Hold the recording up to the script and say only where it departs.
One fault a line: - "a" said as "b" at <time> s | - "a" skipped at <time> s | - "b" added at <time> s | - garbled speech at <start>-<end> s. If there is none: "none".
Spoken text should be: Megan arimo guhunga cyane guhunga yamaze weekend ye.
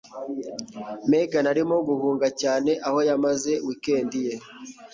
- "guhunga" said as "aho" at 2.9 s